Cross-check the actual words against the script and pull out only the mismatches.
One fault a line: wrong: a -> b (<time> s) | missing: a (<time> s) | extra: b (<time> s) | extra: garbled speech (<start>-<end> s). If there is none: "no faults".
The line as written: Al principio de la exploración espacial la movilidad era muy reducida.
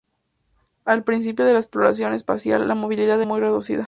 missing: era (3.2 s)